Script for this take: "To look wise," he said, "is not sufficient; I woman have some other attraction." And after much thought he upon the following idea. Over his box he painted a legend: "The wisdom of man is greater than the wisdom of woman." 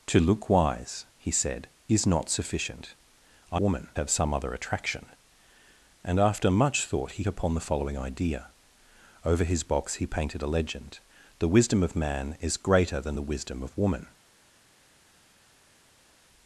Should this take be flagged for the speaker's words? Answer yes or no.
no